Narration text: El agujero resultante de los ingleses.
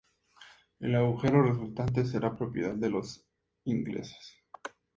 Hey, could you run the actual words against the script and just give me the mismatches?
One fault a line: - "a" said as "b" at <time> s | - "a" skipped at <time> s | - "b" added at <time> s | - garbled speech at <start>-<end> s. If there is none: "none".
- "será propiedad" added at 2.0 s